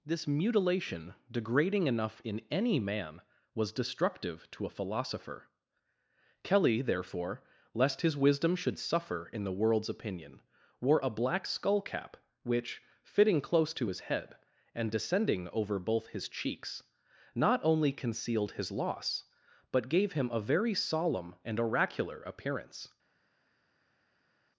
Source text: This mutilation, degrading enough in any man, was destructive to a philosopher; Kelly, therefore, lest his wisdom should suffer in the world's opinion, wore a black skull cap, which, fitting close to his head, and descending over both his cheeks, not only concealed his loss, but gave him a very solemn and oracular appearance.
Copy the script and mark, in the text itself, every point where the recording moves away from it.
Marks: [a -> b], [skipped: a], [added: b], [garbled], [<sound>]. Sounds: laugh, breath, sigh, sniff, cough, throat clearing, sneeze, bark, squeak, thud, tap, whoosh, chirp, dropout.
This mutilation, degrading enough in any man, was destructive to a philosopher; Kelly, therefore, lest his wisdom should suffer in the world's opinion, wore a black skull cap, which, fitting close to his head, and descending over both his cheeks, not only concealed his loss, but gave him a very solemn and oracular appearance.